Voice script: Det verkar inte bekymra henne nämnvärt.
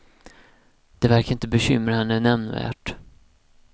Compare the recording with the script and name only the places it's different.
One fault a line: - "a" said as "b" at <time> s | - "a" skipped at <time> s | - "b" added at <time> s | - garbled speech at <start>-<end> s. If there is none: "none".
none